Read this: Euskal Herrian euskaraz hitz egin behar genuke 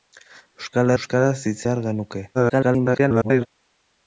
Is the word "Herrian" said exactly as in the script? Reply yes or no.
no